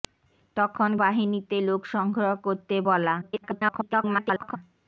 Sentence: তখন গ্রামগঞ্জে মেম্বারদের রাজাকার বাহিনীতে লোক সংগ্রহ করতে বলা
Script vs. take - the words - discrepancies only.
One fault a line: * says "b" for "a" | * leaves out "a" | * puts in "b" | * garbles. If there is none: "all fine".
* leaves out "গ্রামগঞ্জে মেম্বারদের রাজাকার"
* garbles